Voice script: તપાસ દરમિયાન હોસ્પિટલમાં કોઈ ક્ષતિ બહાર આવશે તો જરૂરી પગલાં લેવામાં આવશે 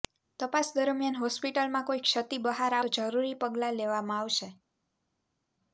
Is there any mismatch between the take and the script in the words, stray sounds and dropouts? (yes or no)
yes